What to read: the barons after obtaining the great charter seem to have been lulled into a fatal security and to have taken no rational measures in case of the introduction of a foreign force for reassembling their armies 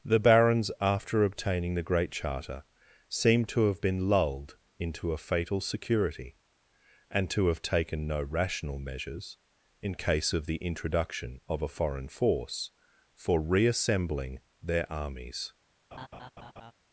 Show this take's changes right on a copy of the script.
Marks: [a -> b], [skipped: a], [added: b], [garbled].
the barons after obtaining the great charter seem to have been lulled into a fatal security and to have taken no rational measures in case of the introduction of a foreign force for reassembling their armies